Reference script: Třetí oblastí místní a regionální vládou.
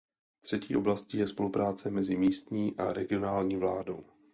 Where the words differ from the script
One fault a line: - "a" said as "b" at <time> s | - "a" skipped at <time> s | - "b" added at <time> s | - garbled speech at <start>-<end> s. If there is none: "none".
- "je spolupráce mezi" added at 1.2 s